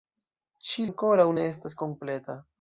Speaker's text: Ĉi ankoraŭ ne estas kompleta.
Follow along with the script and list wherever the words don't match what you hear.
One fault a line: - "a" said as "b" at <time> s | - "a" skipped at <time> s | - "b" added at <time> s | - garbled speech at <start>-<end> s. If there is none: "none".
none